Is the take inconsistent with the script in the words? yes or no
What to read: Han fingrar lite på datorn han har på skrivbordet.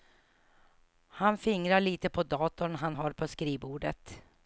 no